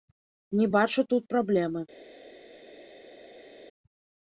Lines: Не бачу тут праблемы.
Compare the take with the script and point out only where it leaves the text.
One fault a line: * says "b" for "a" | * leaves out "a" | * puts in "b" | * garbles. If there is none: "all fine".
all fine